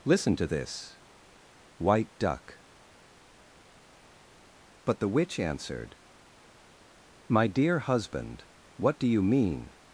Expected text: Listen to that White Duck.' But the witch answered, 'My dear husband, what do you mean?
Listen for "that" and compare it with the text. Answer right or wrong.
wrong